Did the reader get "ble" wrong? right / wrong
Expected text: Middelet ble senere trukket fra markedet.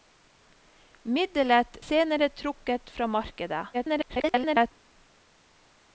wrong